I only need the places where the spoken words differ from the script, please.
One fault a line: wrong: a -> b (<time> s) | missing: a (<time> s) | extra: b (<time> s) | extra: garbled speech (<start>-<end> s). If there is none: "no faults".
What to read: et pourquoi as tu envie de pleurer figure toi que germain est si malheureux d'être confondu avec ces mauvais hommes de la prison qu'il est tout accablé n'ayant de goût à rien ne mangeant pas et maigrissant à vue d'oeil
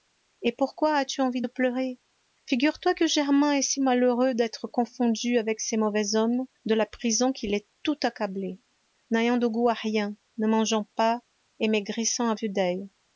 no faults